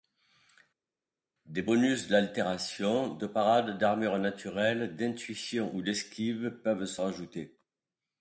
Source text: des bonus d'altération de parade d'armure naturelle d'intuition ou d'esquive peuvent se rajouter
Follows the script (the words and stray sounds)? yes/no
yes